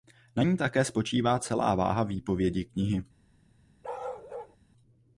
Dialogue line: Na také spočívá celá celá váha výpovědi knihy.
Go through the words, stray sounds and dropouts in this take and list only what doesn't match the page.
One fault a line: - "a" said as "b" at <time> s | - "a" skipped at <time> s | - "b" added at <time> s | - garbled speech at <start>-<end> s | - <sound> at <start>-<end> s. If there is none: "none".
- "ní" added at 0.4 s
- "celá" skipped at 1.7 s
- bark at 3.8-4.6 s